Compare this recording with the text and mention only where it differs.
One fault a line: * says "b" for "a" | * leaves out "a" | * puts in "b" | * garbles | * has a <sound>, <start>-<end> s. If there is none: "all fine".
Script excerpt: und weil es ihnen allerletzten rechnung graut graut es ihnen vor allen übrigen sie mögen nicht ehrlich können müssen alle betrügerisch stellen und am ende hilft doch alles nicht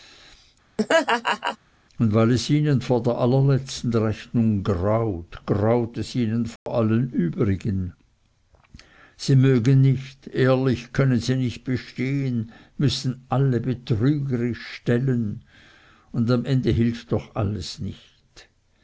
* has a laugh, 0.8-1.6 s
* puts in "vor der"
* has a dropout, 6.6-6.7 s
* puts in "sie nicht bestehen"